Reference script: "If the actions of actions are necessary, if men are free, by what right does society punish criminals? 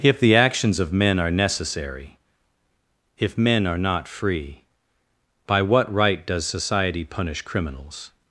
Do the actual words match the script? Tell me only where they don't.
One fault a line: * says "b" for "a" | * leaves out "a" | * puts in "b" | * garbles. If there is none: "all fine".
* says "men" for "actions"
* puts in "not"